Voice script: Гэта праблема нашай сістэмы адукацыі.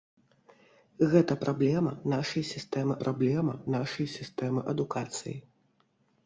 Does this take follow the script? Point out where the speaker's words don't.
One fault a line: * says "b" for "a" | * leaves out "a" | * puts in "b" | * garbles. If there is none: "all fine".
* puts in "праблема нашай сістэмы"